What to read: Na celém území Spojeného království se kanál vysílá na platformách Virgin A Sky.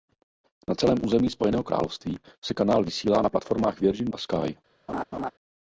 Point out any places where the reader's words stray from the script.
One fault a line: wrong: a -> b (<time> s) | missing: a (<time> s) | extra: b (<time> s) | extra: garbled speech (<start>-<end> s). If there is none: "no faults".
no faults